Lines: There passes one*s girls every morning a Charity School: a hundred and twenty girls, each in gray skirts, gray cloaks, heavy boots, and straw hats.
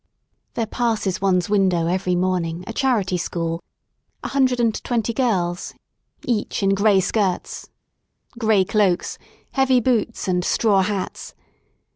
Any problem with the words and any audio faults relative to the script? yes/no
yes